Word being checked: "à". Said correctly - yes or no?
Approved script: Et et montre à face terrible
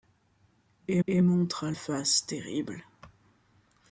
yes